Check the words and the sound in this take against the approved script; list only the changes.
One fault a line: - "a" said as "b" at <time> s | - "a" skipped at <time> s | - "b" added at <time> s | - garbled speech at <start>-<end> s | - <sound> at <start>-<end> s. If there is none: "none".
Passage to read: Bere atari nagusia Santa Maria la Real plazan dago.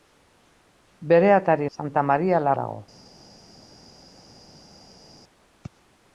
- "nagusia" skipped at 1.7 s
- "Real plazan" skipped at 2.5 s